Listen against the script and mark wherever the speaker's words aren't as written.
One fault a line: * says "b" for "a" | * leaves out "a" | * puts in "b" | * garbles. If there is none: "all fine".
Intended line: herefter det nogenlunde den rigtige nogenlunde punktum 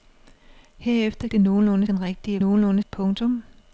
all fine